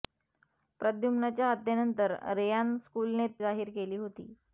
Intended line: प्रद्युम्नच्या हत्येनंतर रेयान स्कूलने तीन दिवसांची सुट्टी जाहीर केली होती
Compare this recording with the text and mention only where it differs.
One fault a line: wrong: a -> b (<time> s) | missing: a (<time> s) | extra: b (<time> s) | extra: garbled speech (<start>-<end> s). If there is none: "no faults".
missing: तीन दिवसांची सुट्टी (3.3 s)